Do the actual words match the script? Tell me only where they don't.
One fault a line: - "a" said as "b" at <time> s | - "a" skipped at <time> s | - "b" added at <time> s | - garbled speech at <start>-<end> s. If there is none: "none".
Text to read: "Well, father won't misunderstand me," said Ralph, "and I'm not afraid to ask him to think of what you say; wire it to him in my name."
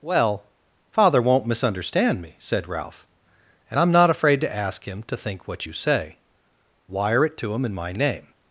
- "of" skipped at 5.5 s